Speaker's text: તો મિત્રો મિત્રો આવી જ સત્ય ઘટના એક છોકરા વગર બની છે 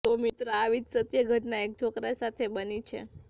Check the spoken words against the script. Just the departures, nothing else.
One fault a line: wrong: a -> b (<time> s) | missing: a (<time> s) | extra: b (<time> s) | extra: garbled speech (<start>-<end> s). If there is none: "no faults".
missing: મિત્રો (0.5 s)
wrong: વગર -> સાથે (2.2 s)